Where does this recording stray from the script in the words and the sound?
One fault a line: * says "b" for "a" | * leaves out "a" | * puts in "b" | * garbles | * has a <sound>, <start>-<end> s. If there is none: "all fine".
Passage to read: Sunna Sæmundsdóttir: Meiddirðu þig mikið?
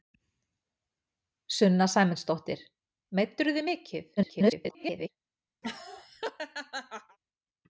* garbles
* has a laugh, 5.6-7.2 s